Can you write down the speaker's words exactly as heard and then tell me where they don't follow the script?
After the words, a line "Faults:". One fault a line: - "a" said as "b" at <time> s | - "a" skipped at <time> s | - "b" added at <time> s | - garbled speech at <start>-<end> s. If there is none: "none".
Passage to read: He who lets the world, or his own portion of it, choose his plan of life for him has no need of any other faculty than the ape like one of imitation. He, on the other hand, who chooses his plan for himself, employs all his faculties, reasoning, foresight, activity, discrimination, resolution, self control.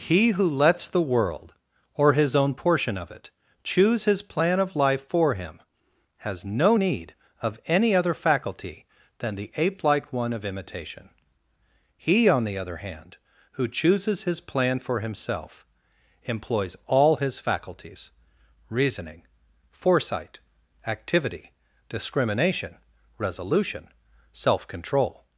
He who lets the world, or his own portion of it, choose his plan of life for him has no need of any other faculty than the ape like one of imitation. He, on the other hand, who chooses his plan for himself, employs all his faculties, reasoning, foresight, activity, discrimination, resolution, self control.
Faults:
none